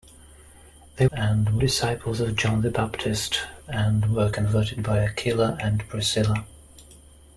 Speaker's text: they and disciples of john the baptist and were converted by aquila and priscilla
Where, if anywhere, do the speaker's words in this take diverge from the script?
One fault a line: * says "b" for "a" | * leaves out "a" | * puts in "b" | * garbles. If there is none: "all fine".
all fine